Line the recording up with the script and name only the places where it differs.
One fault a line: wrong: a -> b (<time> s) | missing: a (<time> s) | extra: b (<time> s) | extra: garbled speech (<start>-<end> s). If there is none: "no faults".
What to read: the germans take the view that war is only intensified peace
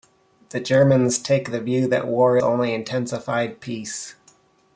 missing: is (2.4 s)